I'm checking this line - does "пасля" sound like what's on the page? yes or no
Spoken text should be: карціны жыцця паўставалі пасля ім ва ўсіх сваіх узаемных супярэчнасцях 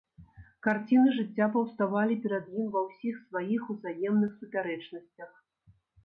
no